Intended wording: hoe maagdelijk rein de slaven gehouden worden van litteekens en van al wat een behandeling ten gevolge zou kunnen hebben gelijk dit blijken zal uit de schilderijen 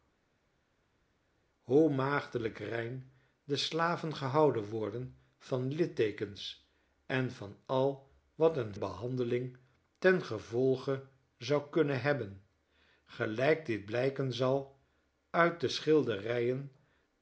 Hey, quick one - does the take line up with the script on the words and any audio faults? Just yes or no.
yes